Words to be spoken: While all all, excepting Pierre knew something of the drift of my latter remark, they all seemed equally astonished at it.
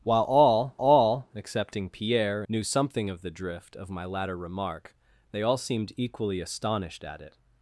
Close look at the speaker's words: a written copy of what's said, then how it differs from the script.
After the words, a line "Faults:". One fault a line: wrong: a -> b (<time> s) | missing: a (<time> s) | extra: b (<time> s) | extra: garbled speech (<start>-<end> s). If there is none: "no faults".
While all all, excepting Pierre knew something of the drift of my latter remark, they all seemed equally astonished at it.
Faults:
no faults